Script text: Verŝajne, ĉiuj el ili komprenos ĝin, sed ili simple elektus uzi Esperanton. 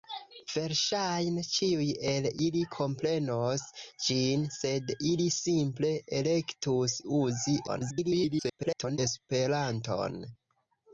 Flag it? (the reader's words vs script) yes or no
yes